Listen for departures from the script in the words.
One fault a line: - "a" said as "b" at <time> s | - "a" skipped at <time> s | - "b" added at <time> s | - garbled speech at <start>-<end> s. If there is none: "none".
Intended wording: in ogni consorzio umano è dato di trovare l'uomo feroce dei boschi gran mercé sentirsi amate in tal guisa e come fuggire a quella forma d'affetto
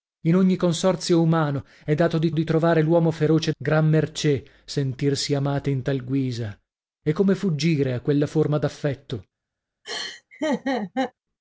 - "di" added at 2.3 s
- "dei boschi" skipped at 3.5 s